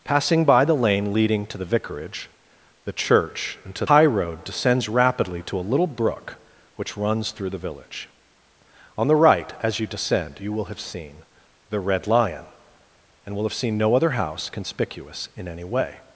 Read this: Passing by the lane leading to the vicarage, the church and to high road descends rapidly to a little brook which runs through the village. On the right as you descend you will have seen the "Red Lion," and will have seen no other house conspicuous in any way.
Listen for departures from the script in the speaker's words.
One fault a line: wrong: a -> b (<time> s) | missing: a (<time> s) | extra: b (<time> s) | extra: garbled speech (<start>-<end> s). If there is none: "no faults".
no faults